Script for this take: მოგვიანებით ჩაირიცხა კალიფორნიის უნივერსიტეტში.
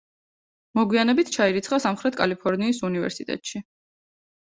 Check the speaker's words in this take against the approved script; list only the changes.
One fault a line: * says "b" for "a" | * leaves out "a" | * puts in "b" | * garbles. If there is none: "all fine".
* puts in "სამხრეთ"